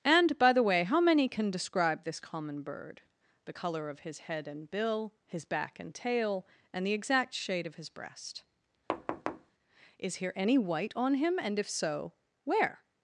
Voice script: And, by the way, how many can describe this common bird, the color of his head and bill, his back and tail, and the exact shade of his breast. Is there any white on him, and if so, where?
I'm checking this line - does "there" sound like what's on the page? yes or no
no